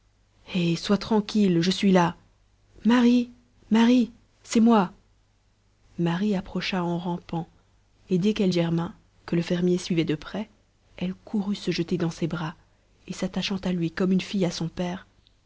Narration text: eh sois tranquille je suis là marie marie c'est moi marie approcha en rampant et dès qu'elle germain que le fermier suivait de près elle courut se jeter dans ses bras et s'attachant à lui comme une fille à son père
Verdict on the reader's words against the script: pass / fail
pass